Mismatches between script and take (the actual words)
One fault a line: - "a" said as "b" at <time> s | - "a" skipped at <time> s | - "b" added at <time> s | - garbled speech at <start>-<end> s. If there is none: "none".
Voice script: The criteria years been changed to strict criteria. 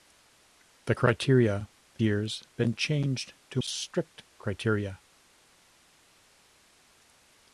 none